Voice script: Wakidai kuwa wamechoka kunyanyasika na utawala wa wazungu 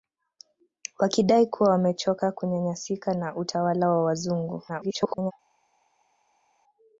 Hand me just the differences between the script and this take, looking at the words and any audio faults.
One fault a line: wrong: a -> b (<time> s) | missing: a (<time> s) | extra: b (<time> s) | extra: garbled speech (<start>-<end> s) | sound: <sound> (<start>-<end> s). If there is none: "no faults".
extra: garbled speech (4.7-5.3 s)